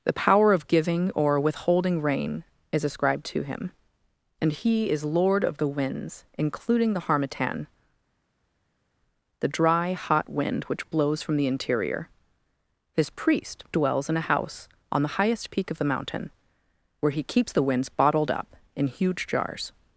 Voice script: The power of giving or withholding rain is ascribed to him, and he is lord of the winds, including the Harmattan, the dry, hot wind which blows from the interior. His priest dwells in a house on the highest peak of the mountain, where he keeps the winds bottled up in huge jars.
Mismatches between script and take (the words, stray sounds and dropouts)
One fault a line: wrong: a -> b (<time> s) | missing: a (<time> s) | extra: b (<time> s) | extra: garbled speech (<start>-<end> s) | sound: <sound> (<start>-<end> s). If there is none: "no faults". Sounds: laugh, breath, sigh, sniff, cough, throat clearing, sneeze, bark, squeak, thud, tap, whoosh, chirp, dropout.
no faults